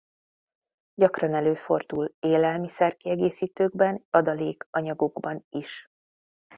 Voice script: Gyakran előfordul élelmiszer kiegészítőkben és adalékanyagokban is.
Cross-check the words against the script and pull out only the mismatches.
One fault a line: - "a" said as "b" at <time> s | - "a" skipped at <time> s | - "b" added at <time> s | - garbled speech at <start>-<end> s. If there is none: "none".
- "és" skipped at 4.0 s